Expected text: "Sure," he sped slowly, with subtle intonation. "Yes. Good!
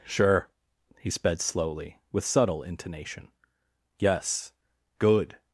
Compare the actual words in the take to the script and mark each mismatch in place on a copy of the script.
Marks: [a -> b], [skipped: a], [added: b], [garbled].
"Sure," he sped slowly, with subtle intonation. "Yes. Good!